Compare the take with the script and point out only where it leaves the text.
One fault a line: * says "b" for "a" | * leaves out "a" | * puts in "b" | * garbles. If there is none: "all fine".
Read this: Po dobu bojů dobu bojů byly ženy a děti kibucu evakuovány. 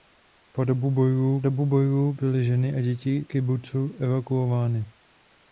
all fine